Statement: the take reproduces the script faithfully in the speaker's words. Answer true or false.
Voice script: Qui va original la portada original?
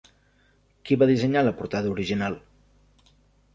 false